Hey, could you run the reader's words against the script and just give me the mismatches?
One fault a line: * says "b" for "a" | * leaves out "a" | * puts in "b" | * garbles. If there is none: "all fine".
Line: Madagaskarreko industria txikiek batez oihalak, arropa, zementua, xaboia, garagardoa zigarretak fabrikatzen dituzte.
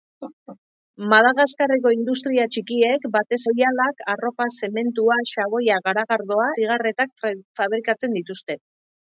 all fine